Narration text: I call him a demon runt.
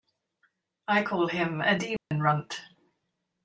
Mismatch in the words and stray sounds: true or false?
true